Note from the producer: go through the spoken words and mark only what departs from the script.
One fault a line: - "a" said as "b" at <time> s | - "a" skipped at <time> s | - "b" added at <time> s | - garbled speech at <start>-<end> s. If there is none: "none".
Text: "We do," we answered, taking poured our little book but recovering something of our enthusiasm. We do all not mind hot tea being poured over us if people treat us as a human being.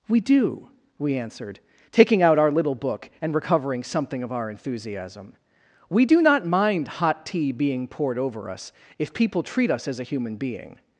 - "poured" said as "out" at 2.2 s
- "but" said as "and" at 3.2 s
- "all" skipped at 6.2 s